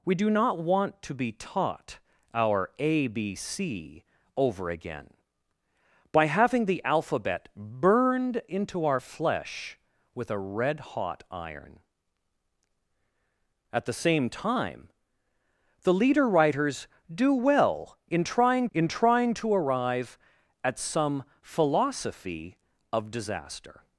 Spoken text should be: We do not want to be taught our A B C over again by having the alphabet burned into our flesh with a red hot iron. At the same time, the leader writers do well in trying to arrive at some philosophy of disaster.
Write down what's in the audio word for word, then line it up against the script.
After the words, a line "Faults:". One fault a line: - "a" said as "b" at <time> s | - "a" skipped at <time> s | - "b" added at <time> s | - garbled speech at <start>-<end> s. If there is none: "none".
We do not want to be taught our A B C over again by having the alphabet burned into our flesh with a red hot iron. At the same time, the leader writers do well in trying in trying to arrive at some philosophy of disaster.
Faults:
- "in trying" added at 18.7 s